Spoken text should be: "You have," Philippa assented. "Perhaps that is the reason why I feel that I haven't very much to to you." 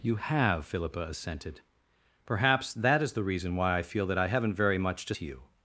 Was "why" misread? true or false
false